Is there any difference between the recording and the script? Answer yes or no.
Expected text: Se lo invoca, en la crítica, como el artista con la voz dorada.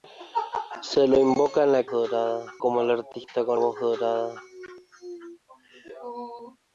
yes